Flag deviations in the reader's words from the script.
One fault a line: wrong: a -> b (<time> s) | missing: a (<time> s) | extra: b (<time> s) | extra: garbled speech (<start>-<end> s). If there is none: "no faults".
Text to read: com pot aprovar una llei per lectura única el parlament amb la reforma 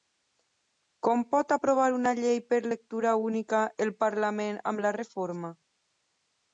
no faults